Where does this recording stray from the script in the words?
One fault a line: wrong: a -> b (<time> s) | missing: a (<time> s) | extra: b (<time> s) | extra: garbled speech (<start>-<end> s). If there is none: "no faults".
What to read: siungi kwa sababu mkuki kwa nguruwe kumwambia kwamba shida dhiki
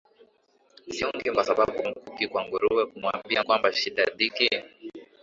no faults